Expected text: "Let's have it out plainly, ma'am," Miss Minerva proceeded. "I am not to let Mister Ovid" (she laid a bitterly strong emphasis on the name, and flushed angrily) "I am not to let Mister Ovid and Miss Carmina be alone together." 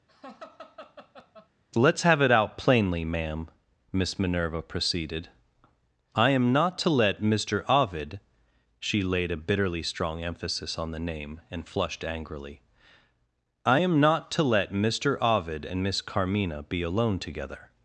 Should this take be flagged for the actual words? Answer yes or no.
no